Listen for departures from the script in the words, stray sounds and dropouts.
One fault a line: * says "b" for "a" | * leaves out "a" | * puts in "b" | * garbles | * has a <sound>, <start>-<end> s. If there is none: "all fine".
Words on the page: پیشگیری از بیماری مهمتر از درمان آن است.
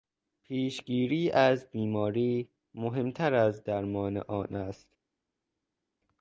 all fine